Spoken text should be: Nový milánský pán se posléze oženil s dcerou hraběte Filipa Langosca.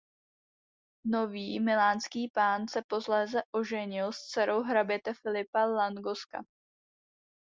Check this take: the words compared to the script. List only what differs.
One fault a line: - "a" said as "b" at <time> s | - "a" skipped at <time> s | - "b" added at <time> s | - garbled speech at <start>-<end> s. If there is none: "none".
none